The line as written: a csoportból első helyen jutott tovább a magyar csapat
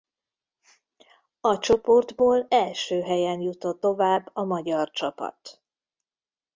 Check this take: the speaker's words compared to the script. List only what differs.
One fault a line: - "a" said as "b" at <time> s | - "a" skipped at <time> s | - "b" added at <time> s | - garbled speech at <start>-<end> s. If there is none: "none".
none